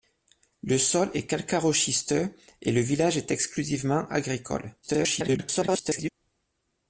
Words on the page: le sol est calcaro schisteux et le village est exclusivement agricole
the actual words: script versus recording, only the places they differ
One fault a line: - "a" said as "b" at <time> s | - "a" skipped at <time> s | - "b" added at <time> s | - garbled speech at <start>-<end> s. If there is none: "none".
- garbled speech at 4.8-6.1 s